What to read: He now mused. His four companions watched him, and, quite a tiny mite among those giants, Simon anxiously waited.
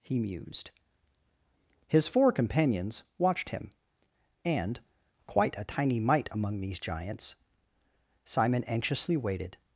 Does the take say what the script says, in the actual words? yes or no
no